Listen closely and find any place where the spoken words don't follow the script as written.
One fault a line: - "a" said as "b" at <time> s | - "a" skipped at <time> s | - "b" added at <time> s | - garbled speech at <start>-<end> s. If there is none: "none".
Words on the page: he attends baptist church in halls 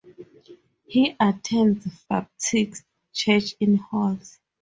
none